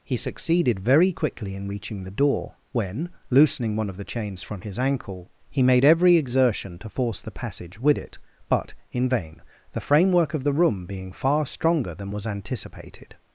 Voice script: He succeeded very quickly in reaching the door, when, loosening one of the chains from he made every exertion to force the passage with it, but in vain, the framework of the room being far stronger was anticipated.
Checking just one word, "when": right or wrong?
right